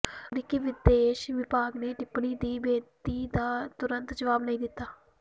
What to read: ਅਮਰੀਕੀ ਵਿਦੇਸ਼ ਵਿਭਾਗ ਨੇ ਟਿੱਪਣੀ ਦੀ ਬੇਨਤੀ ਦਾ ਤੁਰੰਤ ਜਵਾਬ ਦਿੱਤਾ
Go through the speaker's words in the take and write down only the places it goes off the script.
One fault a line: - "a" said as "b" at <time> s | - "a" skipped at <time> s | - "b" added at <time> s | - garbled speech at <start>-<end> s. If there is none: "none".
- "ਨਹੀਂ" added at 4.4 s